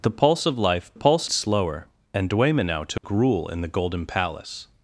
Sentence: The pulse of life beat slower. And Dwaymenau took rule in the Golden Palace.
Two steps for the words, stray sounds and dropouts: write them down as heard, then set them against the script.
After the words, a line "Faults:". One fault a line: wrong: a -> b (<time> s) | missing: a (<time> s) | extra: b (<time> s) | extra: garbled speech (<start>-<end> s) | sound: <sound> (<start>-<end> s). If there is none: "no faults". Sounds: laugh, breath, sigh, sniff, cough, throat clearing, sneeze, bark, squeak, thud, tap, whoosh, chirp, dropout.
The pulse of life pulse slower. And Dwaymenau took rule in the Golden Palace.
Faults:
wrong: beat -> pulse (0.9 s)
sound: dropout (3.0-3.0 s)